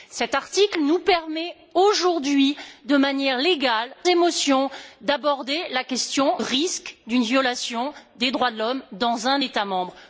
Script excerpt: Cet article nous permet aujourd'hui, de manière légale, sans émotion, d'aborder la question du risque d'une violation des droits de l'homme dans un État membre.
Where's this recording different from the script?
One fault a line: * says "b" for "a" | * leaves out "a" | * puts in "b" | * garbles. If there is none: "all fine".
* leaves out "sans"
* leaves out "du"